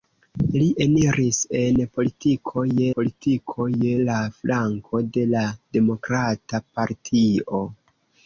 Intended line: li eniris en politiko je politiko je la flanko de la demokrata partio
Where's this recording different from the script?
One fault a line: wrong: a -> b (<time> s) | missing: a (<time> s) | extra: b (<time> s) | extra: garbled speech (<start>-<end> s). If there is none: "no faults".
no faults